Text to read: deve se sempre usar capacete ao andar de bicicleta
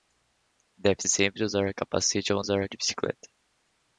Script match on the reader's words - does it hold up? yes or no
no